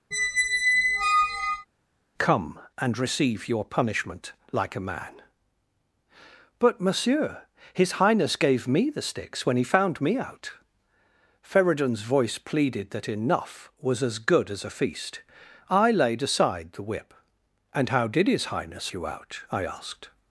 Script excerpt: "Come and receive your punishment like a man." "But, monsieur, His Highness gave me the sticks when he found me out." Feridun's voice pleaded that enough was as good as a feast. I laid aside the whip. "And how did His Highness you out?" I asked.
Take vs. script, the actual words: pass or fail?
pass